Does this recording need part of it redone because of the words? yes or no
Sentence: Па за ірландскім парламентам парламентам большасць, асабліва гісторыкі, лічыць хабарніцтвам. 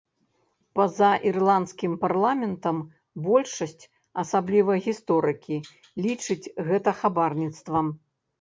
yes